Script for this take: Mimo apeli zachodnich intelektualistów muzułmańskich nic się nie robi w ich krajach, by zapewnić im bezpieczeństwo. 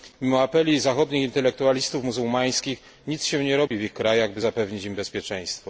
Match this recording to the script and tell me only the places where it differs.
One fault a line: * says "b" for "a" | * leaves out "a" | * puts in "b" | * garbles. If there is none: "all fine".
all fine